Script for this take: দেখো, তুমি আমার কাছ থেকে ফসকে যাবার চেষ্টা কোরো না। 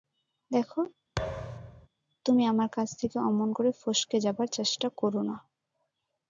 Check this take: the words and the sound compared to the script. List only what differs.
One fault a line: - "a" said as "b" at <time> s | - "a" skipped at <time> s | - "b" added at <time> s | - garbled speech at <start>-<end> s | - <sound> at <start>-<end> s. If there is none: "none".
- thud at 1.2-1.9 s
- "অমন করে" added at 3.2 s